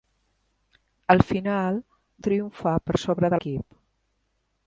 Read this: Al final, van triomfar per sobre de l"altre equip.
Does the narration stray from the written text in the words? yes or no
yes